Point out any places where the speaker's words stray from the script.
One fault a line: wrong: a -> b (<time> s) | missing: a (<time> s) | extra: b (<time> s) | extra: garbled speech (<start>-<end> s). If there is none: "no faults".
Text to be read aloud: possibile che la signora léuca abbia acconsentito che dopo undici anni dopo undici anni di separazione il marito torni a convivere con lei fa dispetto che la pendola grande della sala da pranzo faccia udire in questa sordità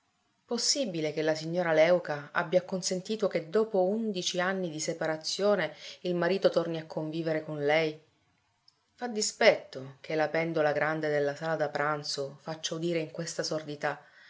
missing: dopo undici anni (4.7 s)